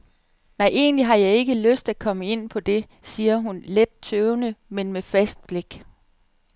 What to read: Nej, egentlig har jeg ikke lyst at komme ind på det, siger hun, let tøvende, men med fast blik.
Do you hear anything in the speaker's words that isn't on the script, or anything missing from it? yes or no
no